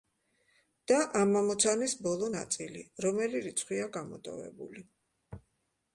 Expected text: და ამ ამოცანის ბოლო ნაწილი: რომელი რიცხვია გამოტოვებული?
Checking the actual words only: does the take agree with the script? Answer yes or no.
yes